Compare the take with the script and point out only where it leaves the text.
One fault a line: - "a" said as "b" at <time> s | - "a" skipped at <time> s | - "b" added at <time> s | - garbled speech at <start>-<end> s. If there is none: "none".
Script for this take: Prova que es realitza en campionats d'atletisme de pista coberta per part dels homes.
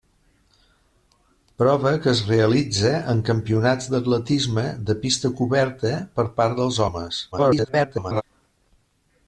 - garbled speech at 7.3-8.2 s